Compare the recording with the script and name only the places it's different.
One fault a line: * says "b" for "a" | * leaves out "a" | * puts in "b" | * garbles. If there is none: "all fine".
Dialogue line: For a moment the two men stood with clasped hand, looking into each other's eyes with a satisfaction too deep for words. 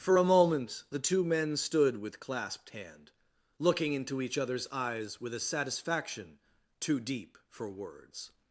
all fine